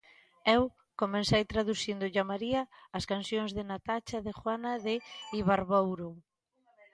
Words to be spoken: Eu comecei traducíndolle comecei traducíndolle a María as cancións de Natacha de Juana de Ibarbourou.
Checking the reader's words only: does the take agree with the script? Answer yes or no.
no